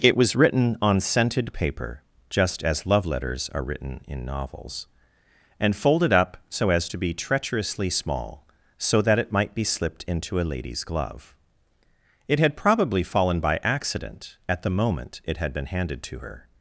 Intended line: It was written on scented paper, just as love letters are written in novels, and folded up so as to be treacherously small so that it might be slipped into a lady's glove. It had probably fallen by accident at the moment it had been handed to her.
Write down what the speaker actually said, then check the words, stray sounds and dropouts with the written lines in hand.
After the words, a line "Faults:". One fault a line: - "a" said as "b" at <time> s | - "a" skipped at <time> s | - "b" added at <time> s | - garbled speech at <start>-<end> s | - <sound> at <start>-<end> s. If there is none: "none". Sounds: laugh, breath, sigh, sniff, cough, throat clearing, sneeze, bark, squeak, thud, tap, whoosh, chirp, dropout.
It was written on scented paper, just as love letters are written in novels, and folded up so as to be treacherously small so that it might be slipped into a lady's glove. It had probably fallen by accident at the moment it had been handed to her.
Faults:
none